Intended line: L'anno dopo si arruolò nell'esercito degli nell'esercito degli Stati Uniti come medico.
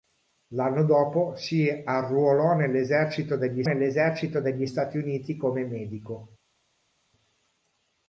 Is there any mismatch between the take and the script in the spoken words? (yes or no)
no